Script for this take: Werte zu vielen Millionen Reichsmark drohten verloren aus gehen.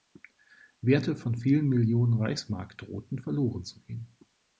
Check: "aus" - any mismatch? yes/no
yes